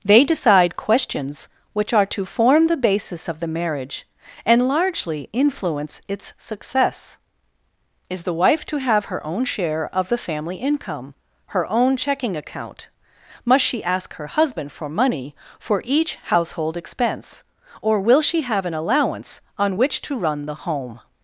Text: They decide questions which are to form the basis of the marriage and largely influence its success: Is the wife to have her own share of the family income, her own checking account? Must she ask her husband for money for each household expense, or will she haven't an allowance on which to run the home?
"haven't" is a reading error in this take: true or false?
true